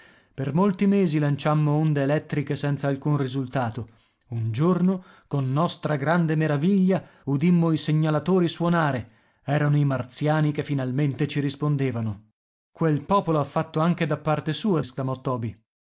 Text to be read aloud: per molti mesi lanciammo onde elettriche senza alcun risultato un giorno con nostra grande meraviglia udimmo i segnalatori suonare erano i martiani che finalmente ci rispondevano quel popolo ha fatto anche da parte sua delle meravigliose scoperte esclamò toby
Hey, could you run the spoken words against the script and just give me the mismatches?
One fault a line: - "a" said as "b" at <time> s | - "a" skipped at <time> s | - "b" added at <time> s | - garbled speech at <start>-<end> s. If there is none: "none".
- "delle meravigliose scoperte" skipped at 14.8 s